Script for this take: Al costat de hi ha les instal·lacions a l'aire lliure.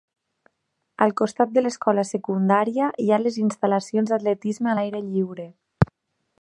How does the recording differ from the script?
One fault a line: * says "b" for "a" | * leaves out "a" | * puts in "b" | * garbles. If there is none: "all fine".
* puts in "l'escola secundària"
* puts in "d'atletisme"